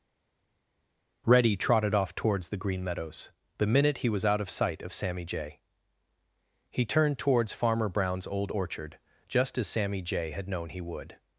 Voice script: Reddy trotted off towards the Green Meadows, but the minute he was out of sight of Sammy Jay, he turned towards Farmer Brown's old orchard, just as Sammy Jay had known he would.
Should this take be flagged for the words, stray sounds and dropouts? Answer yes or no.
yes